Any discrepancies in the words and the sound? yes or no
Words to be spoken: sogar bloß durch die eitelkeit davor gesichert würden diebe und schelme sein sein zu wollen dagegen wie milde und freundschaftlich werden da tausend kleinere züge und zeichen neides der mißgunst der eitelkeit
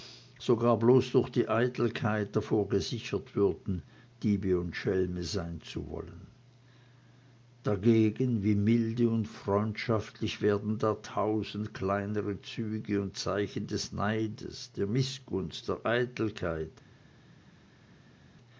yes